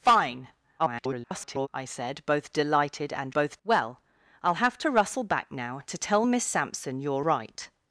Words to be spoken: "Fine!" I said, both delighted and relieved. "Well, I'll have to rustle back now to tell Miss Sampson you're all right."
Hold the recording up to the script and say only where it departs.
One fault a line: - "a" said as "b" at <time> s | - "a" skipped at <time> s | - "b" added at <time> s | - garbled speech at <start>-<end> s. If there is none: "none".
- garbled speech at 0.8-1.7 s
- "relieved" said as "both" at 3.3 s
- "all" skipped at 7.3 s